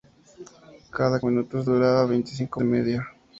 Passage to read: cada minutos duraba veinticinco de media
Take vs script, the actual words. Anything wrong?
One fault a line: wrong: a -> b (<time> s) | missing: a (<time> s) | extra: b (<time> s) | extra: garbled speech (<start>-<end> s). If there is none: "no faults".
no faults